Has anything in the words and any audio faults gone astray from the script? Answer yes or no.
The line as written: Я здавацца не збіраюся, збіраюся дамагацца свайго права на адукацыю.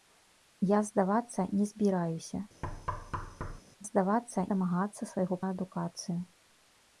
yes